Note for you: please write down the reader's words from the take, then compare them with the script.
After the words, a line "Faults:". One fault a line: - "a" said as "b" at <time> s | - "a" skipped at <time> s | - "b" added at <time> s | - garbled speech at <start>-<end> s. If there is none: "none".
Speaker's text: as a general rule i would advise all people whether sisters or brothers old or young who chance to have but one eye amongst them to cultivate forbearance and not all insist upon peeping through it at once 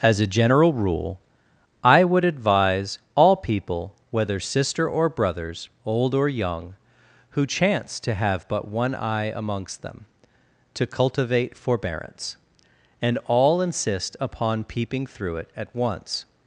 as a general rule i would advise all people whether sister or brothers old or young who chance to have but one eye amongst them to cultivate forbearance and all insist upon peeping through it at once
Faults:
- "sisters" said as "sister" at 4.4 s
- "not" skipped at 13.2 s